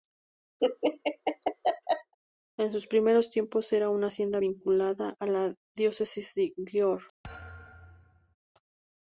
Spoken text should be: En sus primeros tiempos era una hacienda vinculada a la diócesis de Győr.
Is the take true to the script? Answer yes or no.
yes